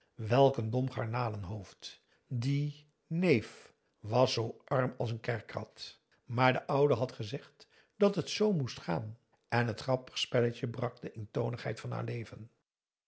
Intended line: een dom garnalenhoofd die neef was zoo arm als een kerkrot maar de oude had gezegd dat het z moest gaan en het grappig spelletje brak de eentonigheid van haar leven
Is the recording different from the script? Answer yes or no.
no